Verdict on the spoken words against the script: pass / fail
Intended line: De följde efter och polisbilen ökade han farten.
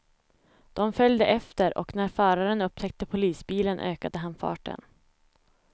fail